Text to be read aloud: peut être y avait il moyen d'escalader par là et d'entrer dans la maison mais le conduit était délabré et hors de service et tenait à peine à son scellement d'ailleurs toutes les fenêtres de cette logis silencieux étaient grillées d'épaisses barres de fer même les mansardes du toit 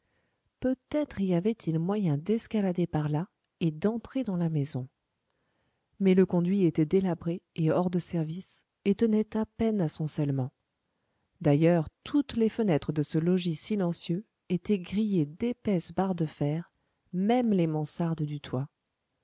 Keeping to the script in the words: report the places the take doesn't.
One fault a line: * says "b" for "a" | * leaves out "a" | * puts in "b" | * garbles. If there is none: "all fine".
* says "ce" for "cette"